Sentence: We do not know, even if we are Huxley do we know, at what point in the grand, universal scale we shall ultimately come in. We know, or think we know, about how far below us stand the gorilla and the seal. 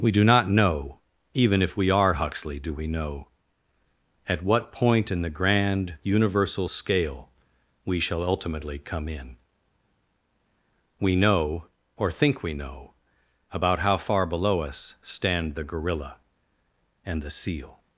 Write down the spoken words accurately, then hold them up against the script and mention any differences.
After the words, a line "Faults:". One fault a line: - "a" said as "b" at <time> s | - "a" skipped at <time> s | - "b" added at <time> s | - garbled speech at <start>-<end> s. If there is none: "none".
We do not know, even if we are Huxley do we know, at what point in the grand, universal scale we shall ultimately come in. We know, or think we know, about how far below us stand the gorilla and the seal.
Faults:
none